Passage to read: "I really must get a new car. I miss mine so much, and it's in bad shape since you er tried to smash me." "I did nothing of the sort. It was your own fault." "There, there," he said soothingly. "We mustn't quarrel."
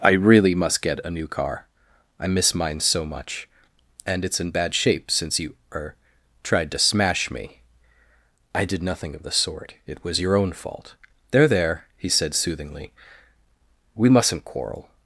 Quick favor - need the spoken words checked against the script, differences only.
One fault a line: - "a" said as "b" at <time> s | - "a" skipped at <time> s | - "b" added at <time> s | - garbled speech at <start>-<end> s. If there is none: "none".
none